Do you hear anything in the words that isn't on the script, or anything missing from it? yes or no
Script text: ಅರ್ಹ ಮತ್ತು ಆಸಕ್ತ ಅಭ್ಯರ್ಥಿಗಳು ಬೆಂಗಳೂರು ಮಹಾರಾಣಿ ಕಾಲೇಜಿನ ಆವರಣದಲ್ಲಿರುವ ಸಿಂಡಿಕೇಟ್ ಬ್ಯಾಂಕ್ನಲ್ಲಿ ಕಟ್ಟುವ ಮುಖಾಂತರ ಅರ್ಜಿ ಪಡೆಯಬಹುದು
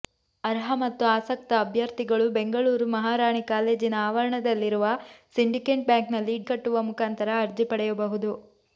no